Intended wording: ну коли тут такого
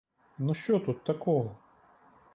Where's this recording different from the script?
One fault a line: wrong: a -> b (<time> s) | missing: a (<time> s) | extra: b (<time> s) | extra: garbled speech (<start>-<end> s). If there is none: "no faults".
wrong: коли -> що (0.5 s)